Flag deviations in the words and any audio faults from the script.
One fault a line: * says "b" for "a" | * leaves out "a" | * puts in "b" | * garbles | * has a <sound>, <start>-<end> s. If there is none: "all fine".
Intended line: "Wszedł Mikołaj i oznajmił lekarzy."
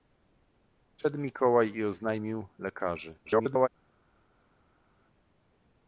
* garbles